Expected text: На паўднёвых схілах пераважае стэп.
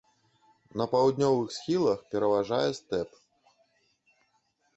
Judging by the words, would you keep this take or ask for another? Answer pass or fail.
pass